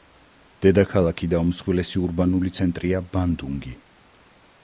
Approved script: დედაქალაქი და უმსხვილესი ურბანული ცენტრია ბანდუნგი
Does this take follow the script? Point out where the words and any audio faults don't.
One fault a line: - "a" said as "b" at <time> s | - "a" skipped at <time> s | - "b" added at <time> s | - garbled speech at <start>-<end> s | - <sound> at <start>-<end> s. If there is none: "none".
none